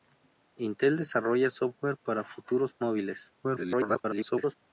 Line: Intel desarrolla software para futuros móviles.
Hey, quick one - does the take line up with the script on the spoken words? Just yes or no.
no